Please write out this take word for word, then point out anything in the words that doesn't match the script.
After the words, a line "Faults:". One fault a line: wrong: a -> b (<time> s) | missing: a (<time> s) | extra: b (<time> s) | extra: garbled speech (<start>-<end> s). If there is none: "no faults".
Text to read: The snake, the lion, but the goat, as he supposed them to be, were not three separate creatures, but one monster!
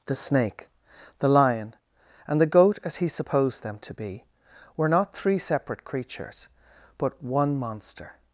The snake, the lion, and the goat, as he supposed them to be, were not three separate creatures, but one monster!
Faults:
wrong: but -> and (2.3 s)